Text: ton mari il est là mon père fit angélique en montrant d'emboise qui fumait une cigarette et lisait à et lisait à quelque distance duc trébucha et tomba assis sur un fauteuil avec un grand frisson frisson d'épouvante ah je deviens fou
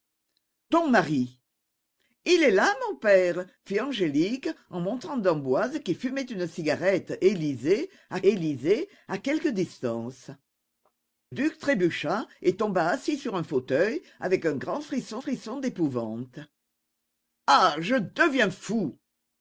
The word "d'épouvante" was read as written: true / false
true